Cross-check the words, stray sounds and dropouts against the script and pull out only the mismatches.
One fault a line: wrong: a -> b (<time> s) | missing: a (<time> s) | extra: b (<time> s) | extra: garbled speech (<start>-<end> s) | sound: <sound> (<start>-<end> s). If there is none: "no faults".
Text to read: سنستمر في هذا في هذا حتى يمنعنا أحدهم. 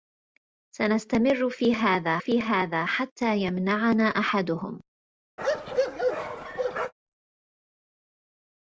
sound: bark (5.4-6.9 s)